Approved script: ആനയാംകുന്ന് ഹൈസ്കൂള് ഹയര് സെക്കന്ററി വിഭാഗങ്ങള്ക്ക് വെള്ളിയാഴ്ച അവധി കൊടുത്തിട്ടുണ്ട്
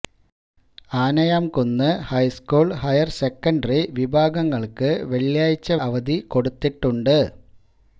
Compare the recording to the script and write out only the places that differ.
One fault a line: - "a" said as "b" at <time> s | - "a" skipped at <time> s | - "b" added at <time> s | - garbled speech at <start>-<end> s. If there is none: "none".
none